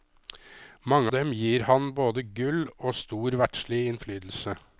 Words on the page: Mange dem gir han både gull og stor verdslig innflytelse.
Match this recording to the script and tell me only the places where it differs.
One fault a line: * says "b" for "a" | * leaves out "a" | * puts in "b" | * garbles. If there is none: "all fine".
all fine